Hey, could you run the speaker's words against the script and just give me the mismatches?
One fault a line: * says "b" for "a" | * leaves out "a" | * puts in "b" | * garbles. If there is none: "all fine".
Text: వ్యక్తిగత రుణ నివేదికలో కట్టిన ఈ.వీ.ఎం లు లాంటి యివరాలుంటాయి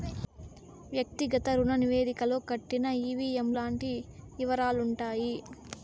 * leaves out "లు"